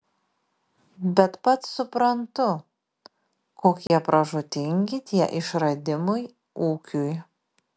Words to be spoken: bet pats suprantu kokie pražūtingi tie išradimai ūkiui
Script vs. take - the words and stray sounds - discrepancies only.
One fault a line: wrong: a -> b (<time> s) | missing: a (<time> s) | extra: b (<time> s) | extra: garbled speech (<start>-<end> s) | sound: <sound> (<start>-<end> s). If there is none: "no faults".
sound: dropout (3.9-3.9 s)